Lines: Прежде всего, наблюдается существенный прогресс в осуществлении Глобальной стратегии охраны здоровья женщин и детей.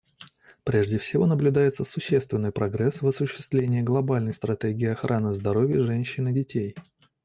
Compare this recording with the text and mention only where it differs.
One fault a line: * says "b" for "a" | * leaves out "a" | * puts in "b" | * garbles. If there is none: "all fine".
all fine